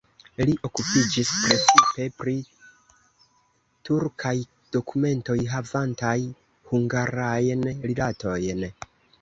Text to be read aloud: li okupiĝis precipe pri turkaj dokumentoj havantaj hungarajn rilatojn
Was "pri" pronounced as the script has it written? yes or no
yes